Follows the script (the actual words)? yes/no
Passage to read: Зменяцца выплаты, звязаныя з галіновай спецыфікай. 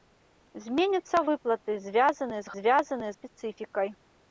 no